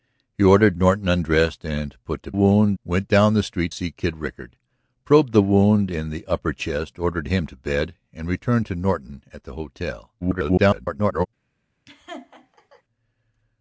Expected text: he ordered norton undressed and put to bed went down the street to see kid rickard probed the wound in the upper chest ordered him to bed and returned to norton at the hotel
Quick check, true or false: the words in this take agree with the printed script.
false